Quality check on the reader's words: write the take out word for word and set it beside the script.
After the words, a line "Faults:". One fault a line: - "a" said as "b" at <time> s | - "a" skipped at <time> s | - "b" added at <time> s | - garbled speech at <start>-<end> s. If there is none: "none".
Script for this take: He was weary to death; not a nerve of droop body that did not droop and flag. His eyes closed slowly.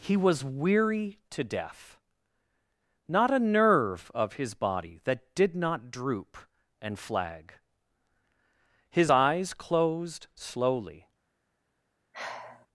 He was weary to death; not a nerve of his body that did not droop and flag. His eyes closed slowly.
Faults:
- "droop" said as "his" at 4.3 s